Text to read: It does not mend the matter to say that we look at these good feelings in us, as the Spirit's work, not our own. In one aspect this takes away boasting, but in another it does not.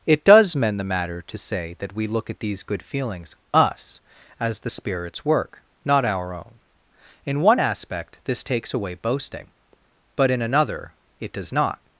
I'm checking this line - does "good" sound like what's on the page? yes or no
yes